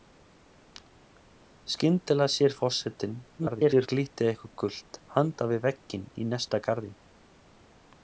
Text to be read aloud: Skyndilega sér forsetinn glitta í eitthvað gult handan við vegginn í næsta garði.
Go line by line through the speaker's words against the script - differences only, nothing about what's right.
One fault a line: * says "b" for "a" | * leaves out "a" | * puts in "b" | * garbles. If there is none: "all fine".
* garbles